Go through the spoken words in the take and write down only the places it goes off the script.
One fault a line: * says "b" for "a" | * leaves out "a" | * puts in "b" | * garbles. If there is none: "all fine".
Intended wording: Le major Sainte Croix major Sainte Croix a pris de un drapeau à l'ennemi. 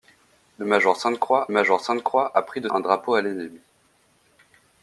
all fine